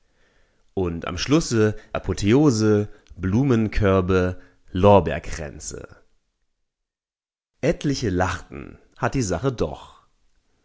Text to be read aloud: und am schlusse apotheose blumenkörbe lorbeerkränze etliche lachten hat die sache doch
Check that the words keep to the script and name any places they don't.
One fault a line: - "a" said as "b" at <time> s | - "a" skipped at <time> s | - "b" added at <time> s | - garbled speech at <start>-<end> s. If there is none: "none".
none